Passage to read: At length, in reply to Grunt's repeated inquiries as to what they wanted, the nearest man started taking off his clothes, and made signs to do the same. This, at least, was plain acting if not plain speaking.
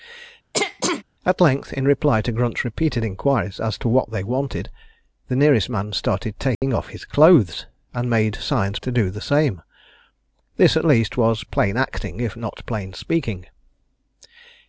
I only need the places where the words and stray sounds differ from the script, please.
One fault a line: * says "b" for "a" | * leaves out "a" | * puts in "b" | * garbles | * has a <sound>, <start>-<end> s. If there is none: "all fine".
* has a throat clearing, 0.5-1.0 s
* has a dropout, 6.5-6.6 s